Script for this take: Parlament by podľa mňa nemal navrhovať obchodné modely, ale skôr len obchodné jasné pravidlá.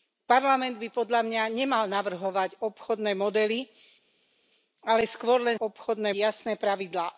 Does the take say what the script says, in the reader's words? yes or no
yes